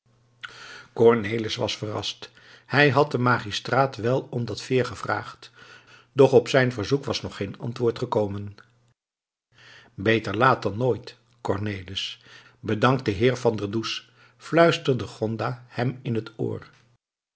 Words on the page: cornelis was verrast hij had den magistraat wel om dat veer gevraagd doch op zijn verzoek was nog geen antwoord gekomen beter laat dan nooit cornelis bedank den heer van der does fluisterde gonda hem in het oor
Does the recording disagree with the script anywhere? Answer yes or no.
no